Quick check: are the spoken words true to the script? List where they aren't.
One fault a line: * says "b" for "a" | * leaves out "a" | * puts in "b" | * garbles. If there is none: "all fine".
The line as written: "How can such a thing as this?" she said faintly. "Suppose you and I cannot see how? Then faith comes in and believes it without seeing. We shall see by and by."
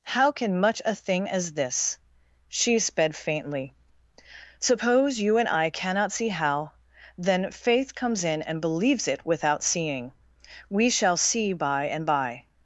* says "much" for "such"
* says "sped" for "said"